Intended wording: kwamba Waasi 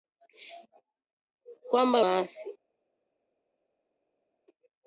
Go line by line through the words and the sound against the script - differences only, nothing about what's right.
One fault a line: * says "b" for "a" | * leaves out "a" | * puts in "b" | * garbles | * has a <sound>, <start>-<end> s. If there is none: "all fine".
all fine